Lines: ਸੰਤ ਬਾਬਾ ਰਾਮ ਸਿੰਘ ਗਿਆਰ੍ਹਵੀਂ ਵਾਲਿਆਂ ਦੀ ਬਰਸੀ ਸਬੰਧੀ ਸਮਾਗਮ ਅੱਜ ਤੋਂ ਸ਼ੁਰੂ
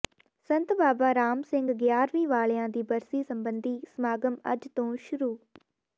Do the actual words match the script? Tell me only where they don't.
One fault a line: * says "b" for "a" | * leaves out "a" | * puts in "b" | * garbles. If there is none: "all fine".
all fine